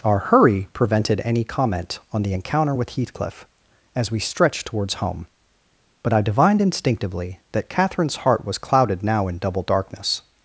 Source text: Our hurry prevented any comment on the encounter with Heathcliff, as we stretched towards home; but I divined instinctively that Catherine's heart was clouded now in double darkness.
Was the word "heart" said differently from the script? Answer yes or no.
no